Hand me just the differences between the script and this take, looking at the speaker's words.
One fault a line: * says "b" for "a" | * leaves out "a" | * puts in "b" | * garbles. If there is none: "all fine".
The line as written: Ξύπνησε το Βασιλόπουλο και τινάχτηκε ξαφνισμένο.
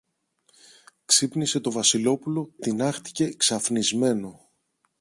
* leaves out "και"